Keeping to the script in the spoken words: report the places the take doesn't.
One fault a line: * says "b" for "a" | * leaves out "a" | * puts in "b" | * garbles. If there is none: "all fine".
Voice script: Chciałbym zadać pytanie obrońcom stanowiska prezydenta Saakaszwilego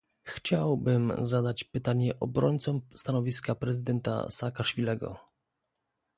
all fine